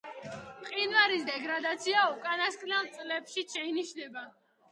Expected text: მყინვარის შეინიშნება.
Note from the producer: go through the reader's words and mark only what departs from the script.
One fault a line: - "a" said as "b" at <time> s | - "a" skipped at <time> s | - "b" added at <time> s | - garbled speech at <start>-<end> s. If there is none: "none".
- "დეგრადაცია უკანასკნელ წლებშიც" added at 1.3 s